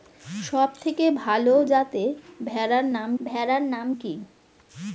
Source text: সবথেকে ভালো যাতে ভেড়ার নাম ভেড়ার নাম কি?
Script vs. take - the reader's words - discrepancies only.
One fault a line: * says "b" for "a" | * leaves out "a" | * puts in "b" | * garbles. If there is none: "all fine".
all fine